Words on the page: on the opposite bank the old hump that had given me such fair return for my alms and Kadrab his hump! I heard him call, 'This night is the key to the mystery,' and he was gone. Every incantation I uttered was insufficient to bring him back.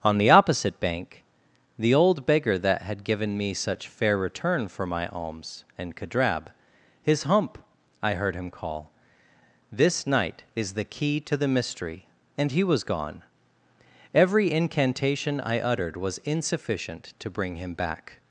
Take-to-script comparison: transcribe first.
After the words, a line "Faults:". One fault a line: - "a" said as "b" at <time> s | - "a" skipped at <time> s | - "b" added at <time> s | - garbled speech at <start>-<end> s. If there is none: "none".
on the opposite bank the old beggar that had given me such fair return for my alms and Kadrab his hump! I heard him call, 'This night is the key to the mystery,' and he was gone. Every incantation I uttered was insufficient to bring him back.
Faults:
- "hump" said as "beggar" at 2.2 s